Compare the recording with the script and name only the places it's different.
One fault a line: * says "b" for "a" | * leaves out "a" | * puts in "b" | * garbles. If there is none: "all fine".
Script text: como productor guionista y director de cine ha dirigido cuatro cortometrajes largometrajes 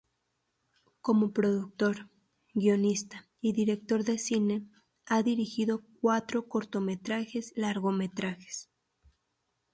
all fine